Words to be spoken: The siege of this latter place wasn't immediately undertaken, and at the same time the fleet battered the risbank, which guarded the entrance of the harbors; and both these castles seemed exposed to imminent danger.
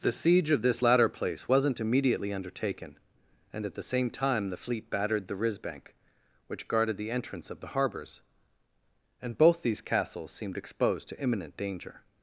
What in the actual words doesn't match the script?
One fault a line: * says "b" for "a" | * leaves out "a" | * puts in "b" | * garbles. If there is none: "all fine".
all fine